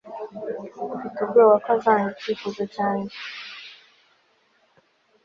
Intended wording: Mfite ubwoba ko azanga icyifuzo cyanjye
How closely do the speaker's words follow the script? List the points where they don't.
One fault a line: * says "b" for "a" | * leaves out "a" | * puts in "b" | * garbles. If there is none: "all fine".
all fine